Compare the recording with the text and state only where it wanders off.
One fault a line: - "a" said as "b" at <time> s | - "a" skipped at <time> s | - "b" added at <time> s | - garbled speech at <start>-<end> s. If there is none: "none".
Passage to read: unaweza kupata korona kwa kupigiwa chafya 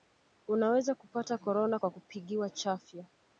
none